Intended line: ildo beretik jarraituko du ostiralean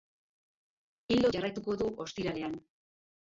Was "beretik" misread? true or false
true